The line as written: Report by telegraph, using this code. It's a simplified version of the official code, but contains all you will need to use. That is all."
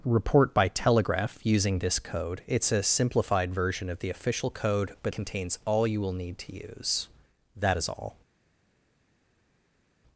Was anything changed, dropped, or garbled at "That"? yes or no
no